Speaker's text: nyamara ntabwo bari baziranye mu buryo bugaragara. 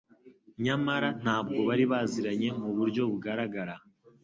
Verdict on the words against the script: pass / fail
pass